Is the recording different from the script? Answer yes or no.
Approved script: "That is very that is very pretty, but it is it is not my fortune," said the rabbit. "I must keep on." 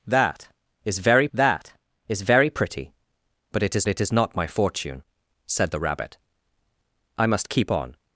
no